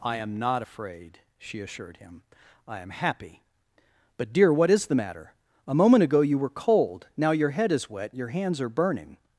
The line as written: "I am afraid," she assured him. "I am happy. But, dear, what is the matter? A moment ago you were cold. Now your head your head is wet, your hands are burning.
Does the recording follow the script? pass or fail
fail